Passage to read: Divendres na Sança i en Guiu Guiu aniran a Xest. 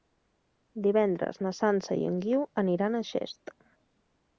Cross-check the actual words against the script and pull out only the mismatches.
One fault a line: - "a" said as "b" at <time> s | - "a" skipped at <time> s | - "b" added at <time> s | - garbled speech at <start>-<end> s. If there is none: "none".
- "Guiu" skipped at 2.5 s